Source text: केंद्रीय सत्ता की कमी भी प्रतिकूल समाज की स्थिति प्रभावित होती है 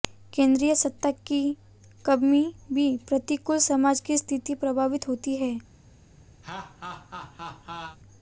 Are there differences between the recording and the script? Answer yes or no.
no